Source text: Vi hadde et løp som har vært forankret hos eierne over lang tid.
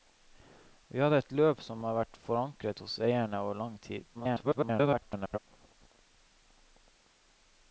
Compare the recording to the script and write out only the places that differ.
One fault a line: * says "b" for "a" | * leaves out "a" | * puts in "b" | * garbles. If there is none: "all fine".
* garbles